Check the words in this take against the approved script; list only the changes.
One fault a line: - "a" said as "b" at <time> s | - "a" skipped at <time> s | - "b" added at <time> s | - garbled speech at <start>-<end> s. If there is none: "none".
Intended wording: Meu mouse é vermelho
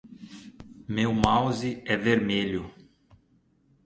none